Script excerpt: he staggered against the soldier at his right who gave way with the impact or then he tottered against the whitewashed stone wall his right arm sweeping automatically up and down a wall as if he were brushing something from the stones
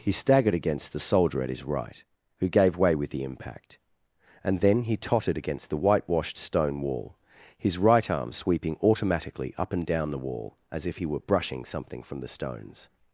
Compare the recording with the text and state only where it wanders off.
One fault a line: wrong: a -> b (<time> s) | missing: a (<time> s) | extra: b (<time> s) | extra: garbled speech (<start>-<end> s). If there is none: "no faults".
wrong: or -> and (4.5 s)
wrong: a -> the (10.1 s)